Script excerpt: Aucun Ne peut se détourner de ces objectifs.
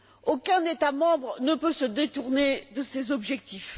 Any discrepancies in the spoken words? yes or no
yes